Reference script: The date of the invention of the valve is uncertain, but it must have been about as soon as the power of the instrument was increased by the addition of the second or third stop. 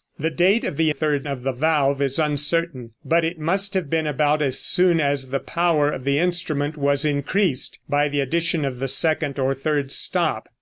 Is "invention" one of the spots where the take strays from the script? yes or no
yes